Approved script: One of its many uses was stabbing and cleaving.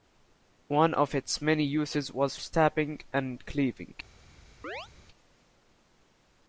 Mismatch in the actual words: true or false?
false